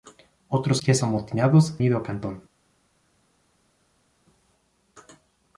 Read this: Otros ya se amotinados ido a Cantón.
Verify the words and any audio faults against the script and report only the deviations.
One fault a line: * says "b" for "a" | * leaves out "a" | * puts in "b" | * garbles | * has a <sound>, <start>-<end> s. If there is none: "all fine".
all fine